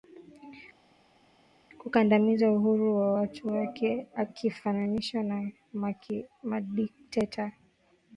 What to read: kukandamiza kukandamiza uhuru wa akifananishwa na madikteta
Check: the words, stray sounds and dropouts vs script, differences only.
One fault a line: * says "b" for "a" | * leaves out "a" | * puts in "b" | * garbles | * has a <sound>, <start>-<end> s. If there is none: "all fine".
* leaves out "kukandamiza"
* puts in "watu wake"